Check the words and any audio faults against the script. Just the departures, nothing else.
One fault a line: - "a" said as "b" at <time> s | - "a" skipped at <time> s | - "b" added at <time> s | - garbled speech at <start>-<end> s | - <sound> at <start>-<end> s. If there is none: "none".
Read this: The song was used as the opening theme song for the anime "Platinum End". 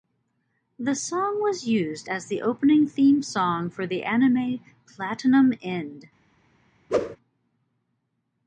- whoosh at 6.9-7.2 s